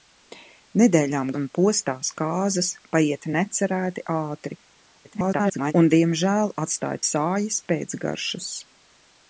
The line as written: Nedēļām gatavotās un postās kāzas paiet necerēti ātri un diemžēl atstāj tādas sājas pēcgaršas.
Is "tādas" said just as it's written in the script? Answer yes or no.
no